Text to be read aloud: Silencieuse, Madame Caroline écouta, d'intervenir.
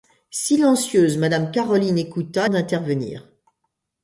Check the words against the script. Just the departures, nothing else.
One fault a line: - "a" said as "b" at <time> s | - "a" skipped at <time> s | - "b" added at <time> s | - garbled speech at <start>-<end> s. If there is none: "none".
none